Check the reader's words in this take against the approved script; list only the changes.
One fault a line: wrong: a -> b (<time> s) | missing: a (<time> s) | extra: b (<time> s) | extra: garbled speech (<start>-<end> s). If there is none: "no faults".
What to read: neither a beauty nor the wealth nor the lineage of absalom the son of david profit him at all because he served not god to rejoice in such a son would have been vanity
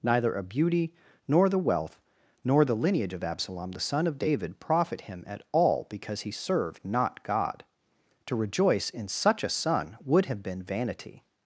no faults